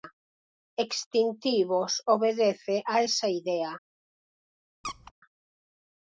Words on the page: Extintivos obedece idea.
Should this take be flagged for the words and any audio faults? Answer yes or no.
yes